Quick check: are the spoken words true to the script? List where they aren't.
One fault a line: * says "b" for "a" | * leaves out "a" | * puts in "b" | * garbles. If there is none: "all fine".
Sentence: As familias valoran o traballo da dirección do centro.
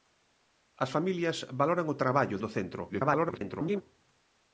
* leaves out "da dirección"
* garbles